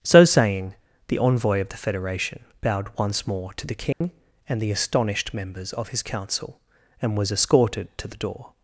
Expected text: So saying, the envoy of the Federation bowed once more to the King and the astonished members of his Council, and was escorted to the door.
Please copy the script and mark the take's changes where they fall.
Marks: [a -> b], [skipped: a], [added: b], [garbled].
So saying, the envoy of the Federation bowed once more to the King and the astonished members of his Council, and was escorted to the door.